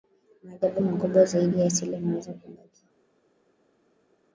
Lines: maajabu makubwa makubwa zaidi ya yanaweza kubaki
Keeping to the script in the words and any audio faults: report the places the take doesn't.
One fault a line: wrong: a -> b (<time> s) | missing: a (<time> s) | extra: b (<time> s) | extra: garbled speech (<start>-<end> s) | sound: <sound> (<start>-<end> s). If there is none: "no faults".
missing: makubwa (1.2 s)
extra: asili (1.7 s)